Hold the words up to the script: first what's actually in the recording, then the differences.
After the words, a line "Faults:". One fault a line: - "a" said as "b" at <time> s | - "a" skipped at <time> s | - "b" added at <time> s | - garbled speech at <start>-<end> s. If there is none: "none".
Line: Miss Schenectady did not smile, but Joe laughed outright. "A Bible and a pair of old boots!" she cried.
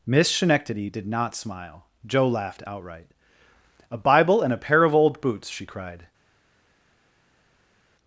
Miss Schenectady did not smile, Joe laughed outright. "A Bible and a pair of old boots!" she cried.
Faults:
- "but" skipped at 1.8 s